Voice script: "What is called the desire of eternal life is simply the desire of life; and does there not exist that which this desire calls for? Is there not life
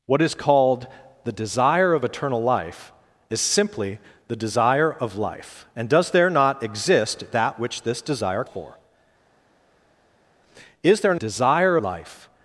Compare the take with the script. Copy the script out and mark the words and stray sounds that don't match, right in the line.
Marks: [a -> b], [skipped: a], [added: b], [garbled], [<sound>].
"What is called the desire of eternal life is simply the desire of life; and does there not exist that which this desire [skipped: calls] for? Is there [not -> desire] life